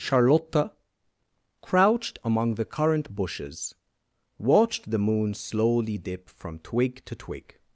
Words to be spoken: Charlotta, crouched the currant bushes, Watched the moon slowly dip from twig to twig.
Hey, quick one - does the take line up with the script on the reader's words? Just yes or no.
no